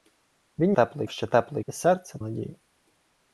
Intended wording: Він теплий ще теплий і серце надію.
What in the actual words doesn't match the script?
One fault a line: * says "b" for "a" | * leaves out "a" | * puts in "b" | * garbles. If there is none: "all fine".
all fine